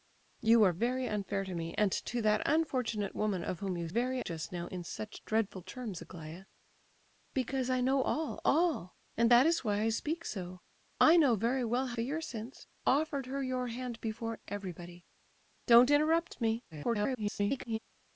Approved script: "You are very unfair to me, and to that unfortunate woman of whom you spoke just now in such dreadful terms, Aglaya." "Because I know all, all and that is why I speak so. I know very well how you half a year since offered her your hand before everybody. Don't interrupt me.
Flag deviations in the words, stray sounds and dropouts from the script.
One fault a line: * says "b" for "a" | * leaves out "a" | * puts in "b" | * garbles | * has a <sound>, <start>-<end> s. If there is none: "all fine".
* says "very" for "spoke"
* leaves out "you half"
* garbles